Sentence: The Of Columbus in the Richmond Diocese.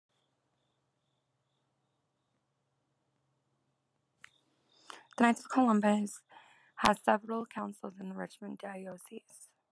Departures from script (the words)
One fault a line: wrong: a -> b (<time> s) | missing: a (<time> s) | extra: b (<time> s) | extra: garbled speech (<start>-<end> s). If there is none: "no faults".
extra: Knights (5.2 s)
extra: has several councils (6.8 s)